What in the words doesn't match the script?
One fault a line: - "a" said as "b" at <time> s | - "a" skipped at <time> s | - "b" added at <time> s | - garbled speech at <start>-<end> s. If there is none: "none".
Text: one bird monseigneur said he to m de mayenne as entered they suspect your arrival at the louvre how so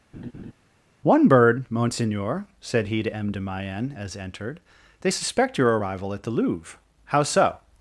none